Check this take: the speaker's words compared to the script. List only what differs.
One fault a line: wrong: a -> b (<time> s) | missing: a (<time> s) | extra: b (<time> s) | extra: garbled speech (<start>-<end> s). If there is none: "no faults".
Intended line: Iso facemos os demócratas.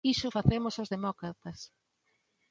no faults